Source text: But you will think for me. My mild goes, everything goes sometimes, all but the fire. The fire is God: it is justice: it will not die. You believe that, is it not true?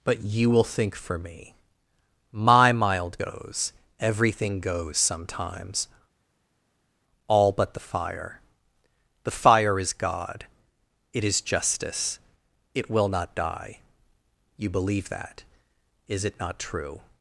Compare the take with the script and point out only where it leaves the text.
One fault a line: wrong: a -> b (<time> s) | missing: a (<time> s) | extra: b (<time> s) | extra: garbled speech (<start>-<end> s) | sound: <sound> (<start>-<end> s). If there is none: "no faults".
no faults